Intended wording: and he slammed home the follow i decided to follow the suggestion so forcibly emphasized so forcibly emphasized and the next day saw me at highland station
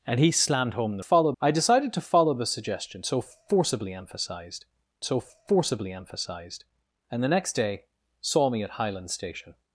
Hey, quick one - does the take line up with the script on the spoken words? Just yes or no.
yes